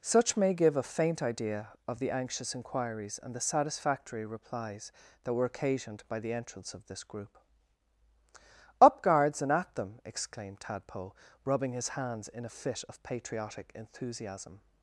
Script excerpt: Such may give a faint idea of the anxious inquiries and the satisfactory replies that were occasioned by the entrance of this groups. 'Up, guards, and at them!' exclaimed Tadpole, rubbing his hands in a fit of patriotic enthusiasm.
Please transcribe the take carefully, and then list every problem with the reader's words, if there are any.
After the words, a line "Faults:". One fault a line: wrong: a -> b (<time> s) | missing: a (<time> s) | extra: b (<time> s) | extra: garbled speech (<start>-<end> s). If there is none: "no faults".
Such may give a faint idea of the anxious inquiries and the satisfactory replies that were occasioned by the entrance of this group. 'Up, guards, and at them!' exclaimed Tadpole, rubbing his hands in a fit of patriotic enthusiasm.
Faults:
wrong: groups -> group (7.0 s)